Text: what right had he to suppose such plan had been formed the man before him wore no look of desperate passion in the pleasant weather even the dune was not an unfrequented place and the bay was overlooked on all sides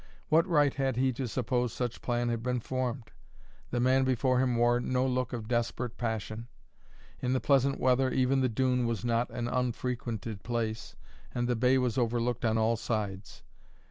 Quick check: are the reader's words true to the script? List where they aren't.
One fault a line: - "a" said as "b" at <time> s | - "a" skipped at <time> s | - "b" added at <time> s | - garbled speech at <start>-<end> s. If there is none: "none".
none